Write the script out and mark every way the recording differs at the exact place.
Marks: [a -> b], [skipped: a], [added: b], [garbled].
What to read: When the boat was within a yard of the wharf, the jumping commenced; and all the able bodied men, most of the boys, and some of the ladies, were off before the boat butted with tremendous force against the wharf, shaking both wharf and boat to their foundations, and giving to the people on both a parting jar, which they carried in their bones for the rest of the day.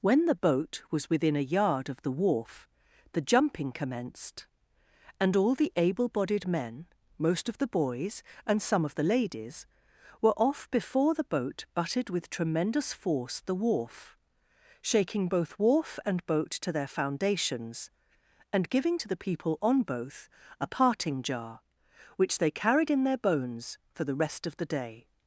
When the boat was within a yard of the wharf, the jumping commenced; and all the able bodied men, most of the boys, and some of the ladies, were off before the boat butted with tremendous force [skipped: against] the wharf, shaking both wharf and boat to their foundations, and giving to the people on both a parting jar, which they carried in their bones for the rest of the day.